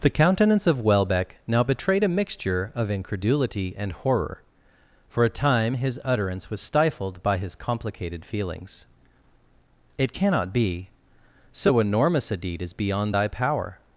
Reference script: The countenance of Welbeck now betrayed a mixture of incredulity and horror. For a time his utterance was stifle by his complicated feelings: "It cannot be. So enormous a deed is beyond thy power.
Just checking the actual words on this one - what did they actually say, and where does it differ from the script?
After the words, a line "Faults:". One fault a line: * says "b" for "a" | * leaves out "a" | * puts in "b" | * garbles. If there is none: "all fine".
The countenance of Welbeck now betrayed a mixture of incredulity and horror. For a time his utterance was stifled by his complicated feelings: "It cannot be. So enormous a deed is beyond thy power.
Faults:
* says "stifled" for "stifle"